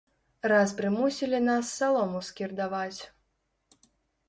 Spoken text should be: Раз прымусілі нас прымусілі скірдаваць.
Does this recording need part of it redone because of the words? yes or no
yes